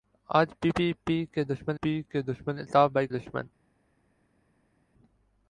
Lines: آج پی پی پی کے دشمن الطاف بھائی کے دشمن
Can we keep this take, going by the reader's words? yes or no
no